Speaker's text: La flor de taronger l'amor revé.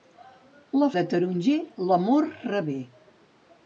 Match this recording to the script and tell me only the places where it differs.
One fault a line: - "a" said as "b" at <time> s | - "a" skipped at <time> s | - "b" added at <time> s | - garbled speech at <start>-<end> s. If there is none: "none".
- "flor" skipped at 0.9 s